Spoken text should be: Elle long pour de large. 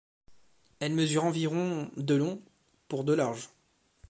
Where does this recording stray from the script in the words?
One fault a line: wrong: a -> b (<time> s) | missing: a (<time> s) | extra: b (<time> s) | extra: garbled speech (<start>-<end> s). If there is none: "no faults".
extra: mesure environ de (0.9 s)